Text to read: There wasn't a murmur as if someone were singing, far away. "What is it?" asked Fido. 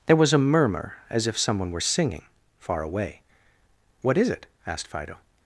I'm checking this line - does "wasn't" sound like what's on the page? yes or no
no